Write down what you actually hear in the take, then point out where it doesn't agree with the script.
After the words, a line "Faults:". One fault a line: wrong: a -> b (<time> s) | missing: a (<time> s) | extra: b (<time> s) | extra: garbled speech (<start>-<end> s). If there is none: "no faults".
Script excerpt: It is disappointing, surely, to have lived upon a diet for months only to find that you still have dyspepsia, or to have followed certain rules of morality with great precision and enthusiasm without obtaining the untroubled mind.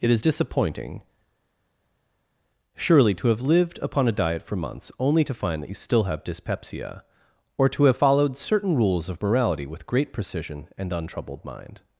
It is disappointing, surely, to have lived upon a diet for months only to find that you still have dyspepsia, or to have followed certain rules of morality with great precision and untroubled mind.
Faults:
missing: enthusiasm without obtaining the (10.9 s)